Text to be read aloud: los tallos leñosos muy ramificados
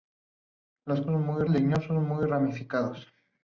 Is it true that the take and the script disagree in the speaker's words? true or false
true